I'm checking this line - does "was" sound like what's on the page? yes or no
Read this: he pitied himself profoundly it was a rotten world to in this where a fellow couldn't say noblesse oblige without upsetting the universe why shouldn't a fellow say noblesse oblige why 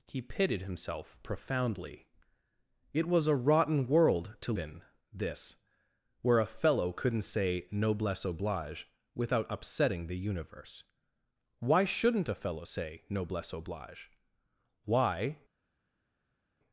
yes